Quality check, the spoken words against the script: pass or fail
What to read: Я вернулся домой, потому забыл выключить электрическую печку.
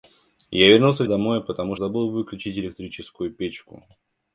pass